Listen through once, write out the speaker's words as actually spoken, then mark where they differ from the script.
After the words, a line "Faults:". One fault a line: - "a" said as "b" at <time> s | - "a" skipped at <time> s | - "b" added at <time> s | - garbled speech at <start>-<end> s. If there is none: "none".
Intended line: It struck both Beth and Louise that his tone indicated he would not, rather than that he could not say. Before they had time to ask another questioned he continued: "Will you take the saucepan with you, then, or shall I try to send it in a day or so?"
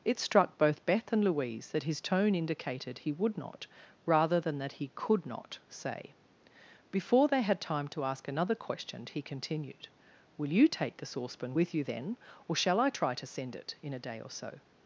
It struck both Beth and Louise that his tone indicated he would not, rather than that he could not say. Before they had time to ask another question he continued: "Will you take the saucepan with you, then, or shall I try to send it in a day or so?"
Faults:
- "questioned" said as "question" at 8.6 s